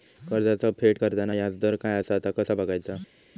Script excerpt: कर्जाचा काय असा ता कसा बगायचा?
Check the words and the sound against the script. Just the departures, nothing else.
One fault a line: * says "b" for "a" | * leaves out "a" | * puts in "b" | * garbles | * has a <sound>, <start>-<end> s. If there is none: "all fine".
* puts in "फेड करताना याजदर"